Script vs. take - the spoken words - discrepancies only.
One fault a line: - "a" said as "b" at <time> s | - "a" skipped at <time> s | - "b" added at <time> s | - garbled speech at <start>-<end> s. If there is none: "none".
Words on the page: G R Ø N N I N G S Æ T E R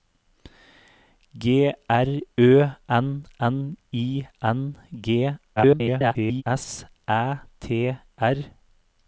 - garbled speech at 5.6-6.4 s
- "E" skipped at 8.0 s